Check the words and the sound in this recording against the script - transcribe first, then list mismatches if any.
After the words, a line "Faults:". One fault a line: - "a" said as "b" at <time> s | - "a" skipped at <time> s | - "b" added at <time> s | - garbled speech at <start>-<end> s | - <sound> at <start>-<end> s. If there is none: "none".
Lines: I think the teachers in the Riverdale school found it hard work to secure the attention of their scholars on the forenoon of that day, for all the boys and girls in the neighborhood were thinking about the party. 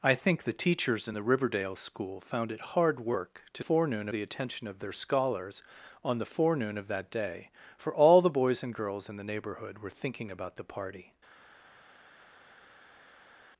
I think the teachers in the Riverdale school found it hard work to forenoon the attention of their scholars on the forenoon of that day, for all the boys and girls in the neighborhood were thinking about the party.
Faults:
- "secure" said as "forenoon" at 3.6 s